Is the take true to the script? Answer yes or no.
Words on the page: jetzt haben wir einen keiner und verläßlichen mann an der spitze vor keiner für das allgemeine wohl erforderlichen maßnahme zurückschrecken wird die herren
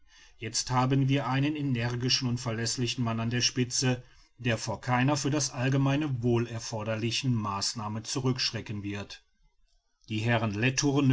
no